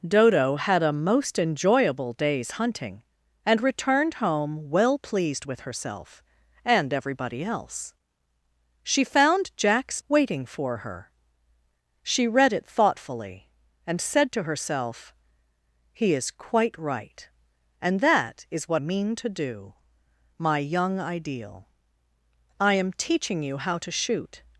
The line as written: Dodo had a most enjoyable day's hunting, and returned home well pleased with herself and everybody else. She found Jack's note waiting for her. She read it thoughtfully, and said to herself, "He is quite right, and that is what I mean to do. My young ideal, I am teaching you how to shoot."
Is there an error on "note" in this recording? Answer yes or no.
yes